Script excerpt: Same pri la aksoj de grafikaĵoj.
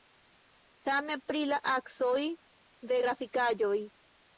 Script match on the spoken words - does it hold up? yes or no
yes